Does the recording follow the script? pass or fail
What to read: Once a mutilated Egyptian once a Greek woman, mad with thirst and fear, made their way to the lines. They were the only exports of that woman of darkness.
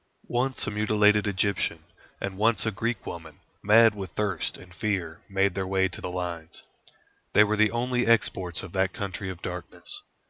fail